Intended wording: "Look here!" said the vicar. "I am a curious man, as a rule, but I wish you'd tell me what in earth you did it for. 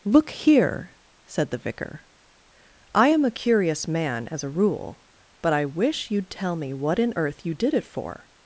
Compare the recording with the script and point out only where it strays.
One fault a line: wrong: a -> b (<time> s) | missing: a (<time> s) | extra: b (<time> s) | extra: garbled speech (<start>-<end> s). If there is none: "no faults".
no faults